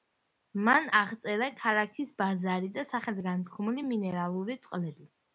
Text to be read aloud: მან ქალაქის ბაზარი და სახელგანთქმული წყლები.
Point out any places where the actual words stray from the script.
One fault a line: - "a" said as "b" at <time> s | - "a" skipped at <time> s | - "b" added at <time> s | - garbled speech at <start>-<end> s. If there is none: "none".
- "აღწერა" added at 1.0 s
- "მინერალური" added at 3.9 s